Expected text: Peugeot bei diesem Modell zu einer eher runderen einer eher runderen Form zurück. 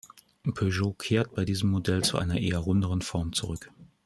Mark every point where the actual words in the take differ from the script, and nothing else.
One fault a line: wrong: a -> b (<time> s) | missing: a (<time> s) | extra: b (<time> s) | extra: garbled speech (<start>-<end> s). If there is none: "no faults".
extra: kehrt (0.9 s)
missing: einer eher runderen (3.0 s)